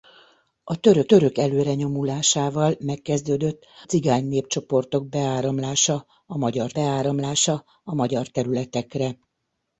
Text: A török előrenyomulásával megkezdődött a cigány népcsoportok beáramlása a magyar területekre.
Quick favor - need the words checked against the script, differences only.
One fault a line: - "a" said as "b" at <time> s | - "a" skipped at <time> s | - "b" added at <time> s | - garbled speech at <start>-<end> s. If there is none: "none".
- "török" added at 1.0 s
- "a" skipped at 3.6 s
- "beáramlása a magyar" added at 6.7 s